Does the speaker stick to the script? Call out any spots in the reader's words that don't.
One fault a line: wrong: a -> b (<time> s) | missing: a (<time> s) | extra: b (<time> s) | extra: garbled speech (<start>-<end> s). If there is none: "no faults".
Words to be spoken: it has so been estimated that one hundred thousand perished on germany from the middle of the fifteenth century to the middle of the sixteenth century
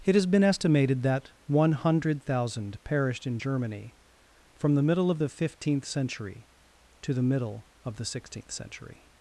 missing: so (0.2 s)
wrong: on -> in (3.3 s)